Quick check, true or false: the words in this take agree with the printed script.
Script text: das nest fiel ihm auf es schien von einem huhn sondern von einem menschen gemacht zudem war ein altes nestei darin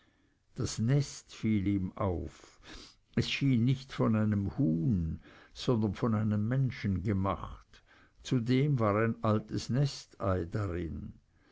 false